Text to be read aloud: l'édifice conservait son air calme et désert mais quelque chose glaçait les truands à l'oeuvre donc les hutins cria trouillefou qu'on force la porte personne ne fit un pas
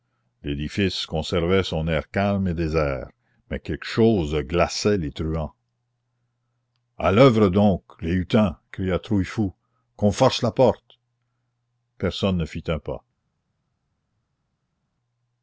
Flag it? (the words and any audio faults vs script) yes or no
no